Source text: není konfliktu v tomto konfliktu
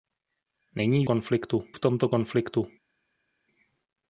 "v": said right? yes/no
yes